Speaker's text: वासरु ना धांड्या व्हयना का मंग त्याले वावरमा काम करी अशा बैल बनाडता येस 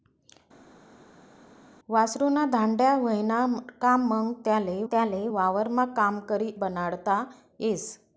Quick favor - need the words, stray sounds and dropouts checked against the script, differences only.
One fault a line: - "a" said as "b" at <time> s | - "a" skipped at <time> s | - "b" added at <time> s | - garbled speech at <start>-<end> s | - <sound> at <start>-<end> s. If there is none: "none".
- "त्याले" added at 4.9 s
- "अशा बैल" skipped at 6.5 s